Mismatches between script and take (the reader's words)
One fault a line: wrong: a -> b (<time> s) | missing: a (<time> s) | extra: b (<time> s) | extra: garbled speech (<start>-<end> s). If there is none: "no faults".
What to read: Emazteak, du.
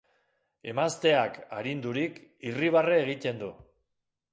extra: arindurik irribarre egiten (1.6 s)